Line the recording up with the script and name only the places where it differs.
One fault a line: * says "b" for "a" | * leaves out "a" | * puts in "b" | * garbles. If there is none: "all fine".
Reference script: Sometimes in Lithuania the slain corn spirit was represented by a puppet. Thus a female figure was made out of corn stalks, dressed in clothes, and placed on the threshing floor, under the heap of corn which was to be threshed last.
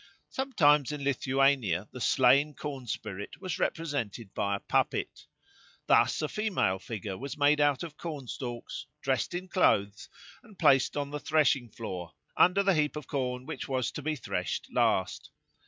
all fine